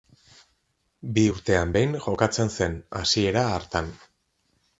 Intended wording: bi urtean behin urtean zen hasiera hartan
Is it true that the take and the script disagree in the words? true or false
true